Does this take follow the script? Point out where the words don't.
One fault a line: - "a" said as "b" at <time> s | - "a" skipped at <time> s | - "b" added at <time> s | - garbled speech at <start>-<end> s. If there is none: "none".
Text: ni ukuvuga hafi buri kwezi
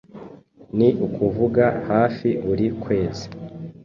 none